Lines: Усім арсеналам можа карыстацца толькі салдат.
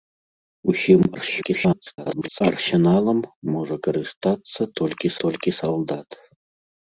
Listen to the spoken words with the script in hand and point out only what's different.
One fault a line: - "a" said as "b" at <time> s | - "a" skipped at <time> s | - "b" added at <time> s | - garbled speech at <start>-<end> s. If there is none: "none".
- garbled speech at 1.1-2.4 s
- "толькі" added at 5.3 s